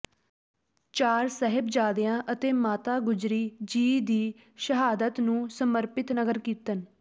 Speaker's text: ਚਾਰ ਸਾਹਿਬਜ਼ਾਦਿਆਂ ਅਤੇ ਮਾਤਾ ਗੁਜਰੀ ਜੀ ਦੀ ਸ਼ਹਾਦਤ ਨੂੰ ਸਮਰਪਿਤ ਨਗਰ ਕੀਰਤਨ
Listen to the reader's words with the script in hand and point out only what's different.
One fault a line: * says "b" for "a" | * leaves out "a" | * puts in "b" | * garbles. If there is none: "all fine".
all fine